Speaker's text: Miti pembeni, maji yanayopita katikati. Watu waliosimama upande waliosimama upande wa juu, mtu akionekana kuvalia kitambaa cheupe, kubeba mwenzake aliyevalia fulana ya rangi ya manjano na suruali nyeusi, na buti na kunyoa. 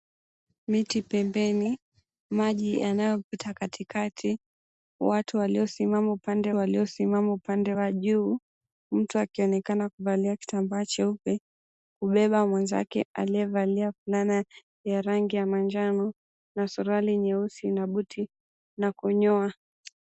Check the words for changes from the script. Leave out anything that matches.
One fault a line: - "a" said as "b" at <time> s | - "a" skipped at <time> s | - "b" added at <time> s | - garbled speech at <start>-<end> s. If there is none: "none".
none